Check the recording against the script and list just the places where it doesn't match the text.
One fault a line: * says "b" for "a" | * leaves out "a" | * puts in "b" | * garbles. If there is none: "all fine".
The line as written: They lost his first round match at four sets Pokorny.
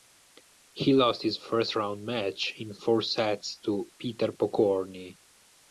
* says "He" for "They"
* says "in" for "at"
* puts in "to Peter"